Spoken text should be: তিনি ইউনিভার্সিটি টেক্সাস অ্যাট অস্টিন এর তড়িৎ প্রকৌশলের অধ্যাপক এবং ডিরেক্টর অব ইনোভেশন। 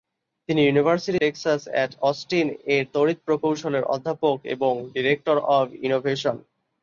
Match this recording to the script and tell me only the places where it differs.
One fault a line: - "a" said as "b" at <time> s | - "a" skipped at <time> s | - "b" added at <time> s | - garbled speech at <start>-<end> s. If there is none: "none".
none